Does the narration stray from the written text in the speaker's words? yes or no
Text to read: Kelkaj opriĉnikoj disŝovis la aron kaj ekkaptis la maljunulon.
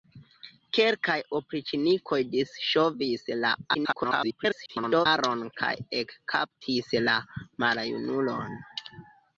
yes